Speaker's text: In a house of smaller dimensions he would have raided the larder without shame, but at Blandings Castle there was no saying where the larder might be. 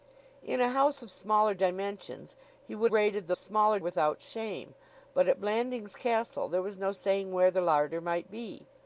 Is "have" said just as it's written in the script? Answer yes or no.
no